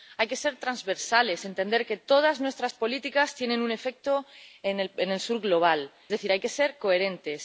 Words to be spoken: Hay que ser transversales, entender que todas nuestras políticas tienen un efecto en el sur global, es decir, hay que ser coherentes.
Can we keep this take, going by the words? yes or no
no